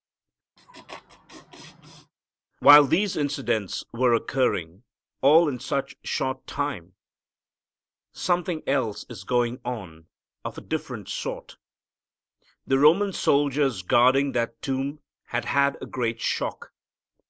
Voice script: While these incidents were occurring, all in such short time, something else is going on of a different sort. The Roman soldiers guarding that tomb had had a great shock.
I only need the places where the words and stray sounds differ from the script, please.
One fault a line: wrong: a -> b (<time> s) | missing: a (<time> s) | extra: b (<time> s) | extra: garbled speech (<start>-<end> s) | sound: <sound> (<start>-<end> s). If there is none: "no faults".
sound: laugh (0.6-2.1 s)